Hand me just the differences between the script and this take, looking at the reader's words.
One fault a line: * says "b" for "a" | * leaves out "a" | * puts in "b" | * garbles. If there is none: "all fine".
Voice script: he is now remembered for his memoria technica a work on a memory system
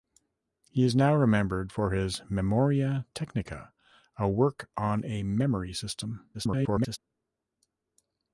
* garbles